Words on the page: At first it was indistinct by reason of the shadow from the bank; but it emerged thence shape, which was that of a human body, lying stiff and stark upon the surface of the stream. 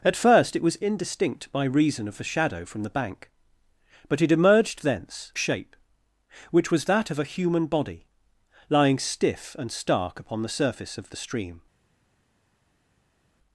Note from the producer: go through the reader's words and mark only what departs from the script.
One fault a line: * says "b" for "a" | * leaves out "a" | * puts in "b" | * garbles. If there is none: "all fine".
all fine